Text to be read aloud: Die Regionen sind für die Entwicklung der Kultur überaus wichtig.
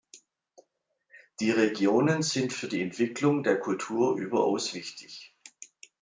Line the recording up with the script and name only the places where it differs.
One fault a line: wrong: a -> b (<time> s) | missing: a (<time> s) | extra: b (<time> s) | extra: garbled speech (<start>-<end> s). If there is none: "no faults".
no faults